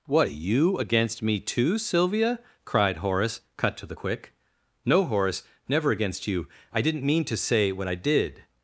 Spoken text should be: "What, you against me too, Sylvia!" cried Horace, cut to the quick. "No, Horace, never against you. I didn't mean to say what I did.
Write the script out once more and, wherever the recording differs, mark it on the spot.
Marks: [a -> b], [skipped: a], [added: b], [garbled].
"What, you against me too, Sylvia!" cried Horace, cut to the quick. "No, Horace, never against you. I didn't mean to say what I did.